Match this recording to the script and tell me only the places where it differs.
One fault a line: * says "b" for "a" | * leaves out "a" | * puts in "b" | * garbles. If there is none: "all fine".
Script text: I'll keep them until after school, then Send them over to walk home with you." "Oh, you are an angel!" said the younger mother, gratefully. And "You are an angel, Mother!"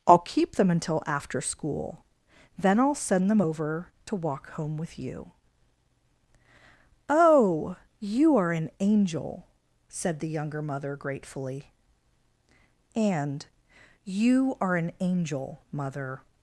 * puts in "I'll"